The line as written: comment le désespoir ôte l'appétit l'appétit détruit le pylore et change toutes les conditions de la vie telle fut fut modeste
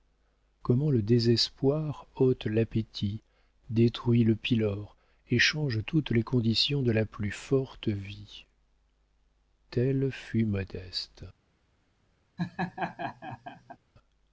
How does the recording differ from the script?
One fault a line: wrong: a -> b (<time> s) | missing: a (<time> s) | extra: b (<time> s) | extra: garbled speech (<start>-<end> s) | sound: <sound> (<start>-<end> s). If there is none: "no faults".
missing: l'appétit (3.2 s)
extra: plus forte (7.0 s)
missing: fut (10.4 s)
sound: laugh (12.4-13.8 s)